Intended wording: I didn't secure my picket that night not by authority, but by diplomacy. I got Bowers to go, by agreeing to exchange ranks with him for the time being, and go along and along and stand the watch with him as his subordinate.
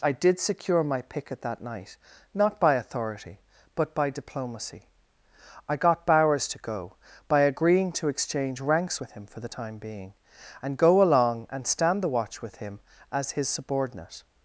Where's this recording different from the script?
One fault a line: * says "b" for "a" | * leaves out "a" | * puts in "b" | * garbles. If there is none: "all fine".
* says "did" for "didn't"
* leaves out "along and"